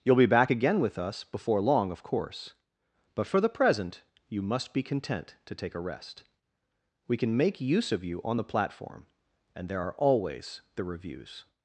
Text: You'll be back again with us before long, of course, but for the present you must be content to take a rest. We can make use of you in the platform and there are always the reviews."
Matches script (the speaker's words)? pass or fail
fail